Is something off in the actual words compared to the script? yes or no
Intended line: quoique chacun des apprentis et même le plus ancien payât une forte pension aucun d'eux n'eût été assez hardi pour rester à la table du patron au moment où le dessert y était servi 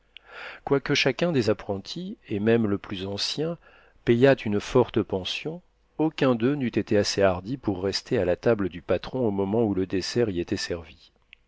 no